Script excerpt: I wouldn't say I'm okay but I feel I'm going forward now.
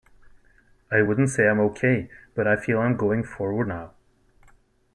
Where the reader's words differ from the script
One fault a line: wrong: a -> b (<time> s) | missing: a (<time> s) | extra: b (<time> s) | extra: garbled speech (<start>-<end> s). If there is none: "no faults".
no faults